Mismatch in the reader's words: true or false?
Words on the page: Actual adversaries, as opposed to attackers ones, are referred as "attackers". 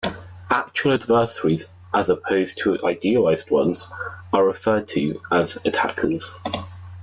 true